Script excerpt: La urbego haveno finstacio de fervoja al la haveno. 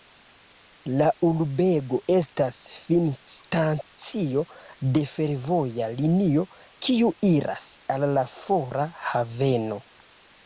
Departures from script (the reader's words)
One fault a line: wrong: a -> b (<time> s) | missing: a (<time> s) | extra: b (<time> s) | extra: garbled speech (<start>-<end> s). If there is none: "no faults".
wrong: haveno -> estas (2.2 s)
extra: linio kiu iras (6.0 s)
extra: fora (8.4 s)